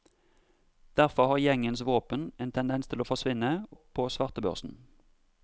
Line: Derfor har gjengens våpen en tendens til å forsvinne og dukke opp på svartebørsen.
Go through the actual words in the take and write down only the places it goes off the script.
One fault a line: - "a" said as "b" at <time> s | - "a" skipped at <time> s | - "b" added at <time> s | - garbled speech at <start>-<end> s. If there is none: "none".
- "og dukke" skipped at 3.5 s